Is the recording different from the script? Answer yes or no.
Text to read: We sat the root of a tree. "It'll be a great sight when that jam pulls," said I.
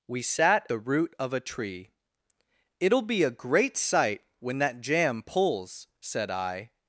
no